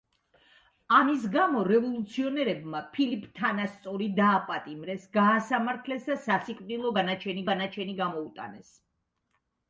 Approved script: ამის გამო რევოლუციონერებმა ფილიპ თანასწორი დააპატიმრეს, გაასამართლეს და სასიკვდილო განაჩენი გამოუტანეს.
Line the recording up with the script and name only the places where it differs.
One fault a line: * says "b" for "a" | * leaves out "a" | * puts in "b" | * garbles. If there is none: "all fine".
* puts in "განაჩენი"